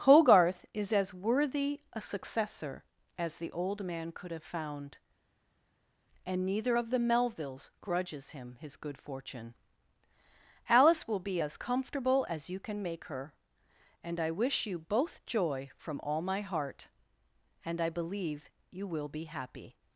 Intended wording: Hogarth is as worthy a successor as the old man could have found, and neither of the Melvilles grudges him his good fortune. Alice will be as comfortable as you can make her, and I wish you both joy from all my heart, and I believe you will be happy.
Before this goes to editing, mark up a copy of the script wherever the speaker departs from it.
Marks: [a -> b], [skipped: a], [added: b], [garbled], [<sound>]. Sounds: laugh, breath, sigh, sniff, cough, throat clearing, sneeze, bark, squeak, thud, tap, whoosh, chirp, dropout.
Hogarth is as worthy a successor as the old man could have found, and neither of the Melvilles grudges him his good fortune. Alice will be as comfortable as you can make her, and I wish you both joy from all my heart, and I believe you will be happy.